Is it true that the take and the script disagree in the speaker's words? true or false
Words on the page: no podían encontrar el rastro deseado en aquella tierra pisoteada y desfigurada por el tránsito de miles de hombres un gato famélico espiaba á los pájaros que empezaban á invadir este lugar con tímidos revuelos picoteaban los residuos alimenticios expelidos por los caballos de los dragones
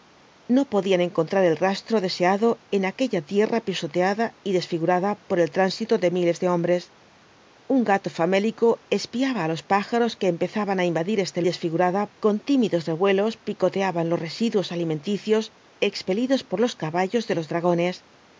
true